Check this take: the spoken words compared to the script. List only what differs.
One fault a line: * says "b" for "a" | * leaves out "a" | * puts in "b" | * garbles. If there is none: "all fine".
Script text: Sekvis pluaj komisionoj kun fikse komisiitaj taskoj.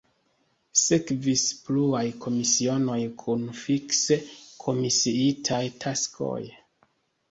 all fine